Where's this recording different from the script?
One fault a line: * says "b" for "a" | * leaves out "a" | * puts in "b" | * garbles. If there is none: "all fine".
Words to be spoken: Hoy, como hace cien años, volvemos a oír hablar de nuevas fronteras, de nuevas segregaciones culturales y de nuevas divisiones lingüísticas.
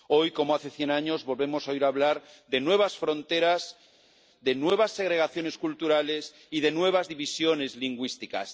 all fine